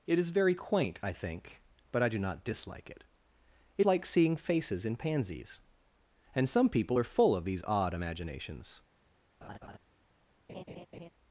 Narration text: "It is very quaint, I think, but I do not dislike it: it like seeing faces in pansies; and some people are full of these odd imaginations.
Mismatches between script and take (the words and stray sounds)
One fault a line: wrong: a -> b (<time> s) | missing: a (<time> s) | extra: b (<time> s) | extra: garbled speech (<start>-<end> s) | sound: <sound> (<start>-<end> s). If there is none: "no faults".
sound: laugh (9.4-9.8 s)
sound: laugh (10.5-11.1 s)